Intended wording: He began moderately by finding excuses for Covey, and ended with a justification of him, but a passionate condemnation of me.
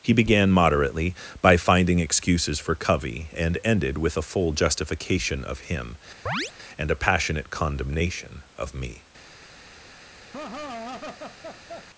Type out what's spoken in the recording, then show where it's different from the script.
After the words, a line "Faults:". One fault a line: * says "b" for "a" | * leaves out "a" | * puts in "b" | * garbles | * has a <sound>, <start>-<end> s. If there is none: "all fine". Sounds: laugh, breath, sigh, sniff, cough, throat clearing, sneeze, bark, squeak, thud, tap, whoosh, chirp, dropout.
He began moderately by finding excuses for Covey, and ended with a full justification of him, and a passionate condemnation of me.
Faults:
* puts in "full"
* has a chirp, 6.3-6.5 s
* says "and" for "but"
* has a laugh, 10.3-11.9 s